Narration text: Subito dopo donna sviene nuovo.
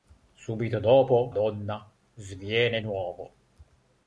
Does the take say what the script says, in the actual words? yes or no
yes